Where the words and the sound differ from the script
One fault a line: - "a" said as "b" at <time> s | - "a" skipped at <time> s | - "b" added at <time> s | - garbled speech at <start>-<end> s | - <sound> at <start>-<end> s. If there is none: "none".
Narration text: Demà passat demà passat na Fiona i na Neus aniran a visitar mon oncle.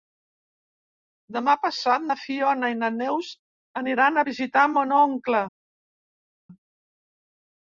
- "demà passat" skipped at 2.1 s